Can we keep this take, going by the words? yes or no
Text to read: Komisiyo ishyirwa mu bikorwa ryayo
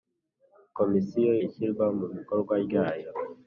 yes